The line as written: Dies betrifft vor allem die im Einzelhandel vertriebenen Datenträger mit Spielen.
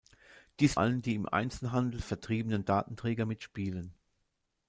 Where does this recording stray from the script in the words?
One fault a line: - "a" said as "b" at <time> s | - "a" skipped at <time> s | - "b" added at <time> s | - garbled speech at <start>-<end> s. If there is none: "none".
- "betrifft vor" skipped at 0.8 s